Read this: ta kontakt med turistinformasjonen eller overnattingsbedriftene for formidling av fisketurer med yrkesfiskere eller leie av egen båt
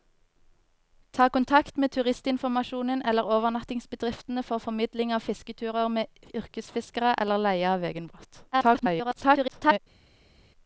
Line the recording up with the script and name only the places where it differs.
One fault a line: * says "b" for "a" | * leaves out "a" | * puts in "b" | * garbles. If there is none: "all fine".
* garbles